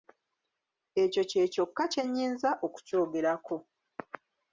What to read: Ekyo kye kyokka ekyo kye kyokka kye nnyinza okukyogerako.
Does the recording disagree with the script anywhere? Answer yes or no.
yes